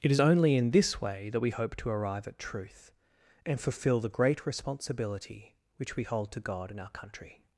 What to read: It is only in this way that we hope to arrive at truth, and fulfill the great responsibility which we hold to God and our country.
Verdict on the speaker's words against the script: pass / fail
pass